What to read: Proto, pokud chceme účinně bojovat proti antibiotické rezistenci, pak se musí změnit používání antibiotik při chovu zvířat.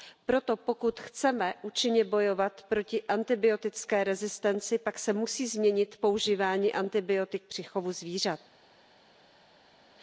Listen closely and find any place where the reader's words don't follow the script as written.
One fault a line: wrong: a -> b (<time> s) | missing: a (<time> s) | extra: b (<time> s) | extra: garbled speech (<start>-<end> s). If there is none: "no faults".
no faults